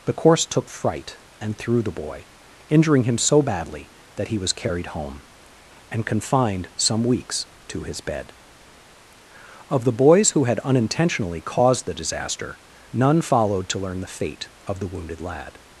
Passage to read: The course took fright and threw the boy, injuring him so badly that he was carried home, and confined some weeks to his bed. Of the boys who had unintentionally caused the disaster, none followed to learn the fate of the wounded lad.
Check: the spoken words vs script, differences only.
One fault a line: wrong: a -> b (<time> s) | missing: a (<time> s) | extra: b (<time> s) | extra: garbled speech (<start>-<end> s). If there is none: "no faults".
no faults